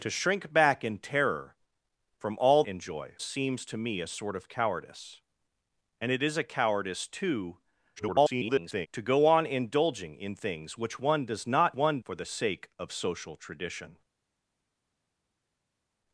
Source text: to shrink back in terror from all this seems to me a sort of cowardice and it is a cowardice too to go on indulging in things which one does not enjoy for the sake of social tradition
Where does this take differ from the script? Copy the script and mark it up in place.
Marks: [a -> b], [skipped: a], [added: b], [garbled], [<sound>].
to shrink back in terror from all [this -> enjoy] seems to me a sort of cowardice and it is a cowardice too [garbled] to go on indulging in things which one does not [enjoy -> one] for the sake of social tradition